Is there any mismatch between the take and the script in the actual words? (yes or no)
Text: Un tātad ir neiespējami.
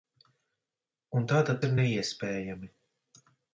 no